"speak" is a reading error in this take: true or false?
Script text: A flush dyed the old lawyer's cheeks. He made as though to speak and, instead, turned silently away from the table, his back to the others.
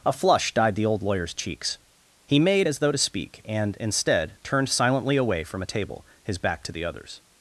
false